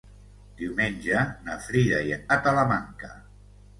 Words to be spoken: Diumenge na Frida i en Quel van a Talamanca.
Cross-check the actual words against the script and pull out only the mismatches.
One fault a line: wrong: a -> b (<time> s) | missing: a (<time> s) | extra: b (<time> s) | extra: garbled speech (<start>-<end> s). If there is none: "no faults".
missing: Quel van (2.2 s)